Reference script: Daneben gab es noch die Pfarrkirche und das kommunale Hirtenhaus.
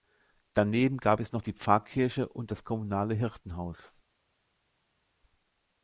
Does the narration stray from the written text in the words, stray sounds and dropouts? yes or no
no